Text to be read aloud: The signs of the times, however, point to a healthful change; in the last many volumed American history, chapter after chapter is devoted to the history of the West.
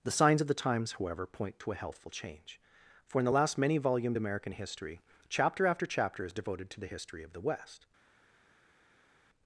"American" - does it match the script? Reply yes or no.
yes